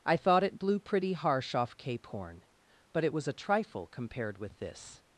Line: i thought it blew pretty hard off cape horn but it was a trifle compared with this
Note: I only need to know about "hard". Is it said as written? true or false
false